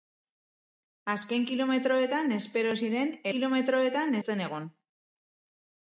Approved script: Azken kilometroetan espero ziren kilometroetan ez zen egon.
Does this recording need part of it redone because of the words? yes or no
no